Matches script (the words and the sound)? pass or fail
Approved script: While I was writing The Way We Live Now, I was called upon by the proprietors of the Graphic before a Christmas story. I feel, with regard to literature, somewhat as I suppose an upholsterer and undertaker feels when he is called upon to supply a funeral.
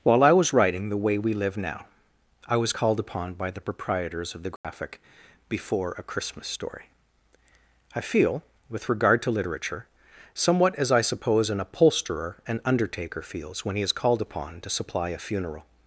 fail